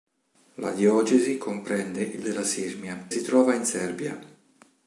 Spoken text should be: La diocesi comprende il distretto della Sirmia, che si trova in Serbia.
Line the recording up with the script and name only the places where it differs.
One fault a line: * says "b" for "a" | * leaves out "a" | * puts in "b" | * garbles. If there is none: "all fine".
* leaves out "distretto"
* leaves out "che"